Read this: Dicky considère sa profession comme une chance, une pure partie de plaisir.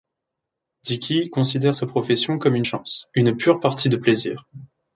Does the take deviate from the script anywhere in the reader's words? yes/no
no